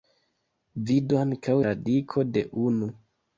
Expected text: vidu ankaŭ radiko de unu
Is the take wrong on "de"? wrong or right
right